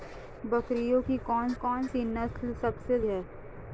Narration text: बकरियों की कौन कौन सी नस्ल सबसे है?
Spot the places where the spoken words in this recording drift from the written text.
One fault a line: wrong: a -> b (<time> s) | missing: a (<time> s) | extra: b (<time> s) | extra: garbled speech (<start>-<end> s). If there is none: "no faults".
no faults